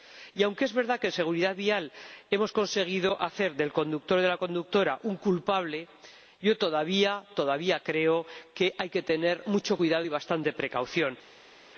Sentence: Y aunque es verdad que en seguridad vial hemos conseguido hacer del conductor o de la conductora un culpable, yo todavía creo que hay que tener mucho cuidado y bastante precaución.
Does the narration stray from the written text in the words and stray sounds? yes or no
no